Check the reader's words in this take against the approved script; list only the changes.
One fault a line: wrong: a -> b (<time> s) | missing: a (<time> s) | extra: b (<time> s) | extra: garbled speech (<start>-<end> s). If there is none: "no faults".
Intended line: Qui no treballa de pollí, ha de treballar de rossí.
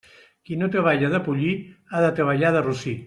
no faults